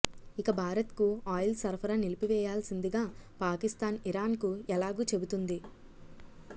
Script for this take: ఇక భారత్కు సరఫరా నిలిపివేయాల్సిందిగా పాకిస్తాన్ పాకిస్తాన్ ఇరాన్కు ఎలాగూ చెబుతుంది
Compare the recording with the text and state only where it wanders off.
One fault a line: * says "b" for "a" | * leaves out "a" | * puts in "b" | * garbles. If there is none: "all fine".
* puts in "ఆయిల్"
* leaves out "పాకిస్తాన్"